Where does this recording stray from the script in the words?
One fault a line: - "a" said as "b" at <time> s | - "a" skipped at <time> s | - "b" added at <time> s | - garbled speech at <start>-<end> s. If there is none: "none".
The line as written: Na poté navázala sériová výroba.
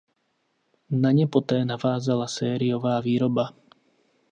- "ně" added at 1.1 s